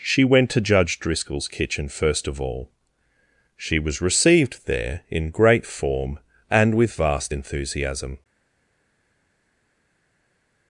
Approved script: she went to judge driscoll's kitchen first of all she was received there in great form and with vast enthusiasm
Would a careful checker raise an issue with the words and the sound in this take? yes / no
no